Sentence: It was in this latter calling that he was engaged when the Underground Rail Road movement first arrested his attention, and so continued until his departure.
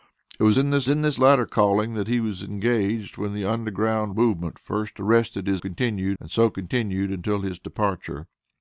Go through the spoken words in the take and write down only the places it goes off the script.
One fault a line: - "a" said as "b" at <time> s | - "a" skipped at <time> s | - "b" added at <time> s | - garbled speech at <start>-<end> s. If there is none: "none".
- "in this" added at 0.9 s
- "Rail Road" skipped at 4.1 s
- "attention" said as "continued" at 5.6 s